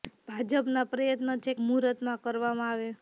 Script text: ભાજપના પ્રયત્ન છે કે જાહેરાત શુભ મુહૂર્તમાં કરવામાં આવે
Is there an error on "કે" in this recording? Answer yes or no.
yes